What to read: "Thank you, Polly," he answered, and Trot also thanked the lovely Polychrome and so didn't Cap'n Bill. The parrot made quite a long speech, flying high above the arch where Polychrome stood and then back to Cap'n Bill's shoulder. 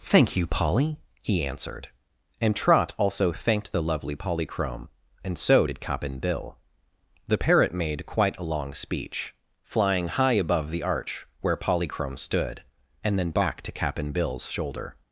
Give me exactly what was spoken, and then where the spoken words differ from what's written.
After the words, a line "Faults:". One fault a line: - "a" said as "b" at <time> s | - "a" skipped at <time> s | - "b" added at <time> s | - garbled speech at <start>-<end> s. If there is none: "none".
"Thank you, Polly," he answered, and Trot also thanked the lovely Polychrome and so did Cap'n Bill. The parrot made quite a long speech, flying high above the arch where Polychrome stood and then back to Cap'n Bill's shoulder.
Faults:
- "didn't" said as "did" at 5.6 s